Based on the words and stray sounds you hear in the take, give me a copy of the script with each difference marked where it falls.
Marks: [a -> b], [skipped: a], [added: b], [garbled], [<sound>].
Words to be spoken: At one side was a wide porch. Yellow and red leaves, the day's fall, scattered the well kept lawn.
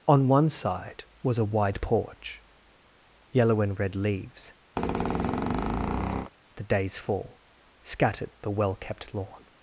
[At -> On] one side was a wide porch. Yellow and red leaves, [squeak] the day's fall, scattered the well kept lawn.